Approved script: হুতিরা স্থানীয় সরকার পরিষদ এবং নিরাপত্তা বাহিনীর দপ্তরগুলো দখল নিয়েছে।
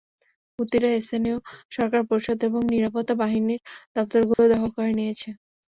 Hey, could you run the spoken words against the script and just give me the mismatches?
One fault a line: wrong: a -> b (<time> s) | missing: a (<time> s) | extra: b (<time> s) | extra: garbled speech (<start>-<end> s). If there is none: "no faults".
extra: করে (4.8 s)